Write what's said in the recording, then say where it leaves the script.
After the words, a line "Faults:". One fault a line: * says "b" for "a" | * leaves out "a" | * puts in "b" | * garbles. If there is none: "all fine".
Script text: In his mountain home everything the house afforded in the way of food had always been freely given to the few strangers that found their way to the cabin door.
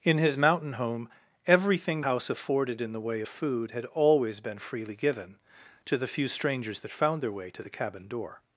In his mountain home everything house afforded in the way food had always been freely given to the few strangers that found their way to the cabin door.
Faults:
* leaves out "the"
* leaves out "of"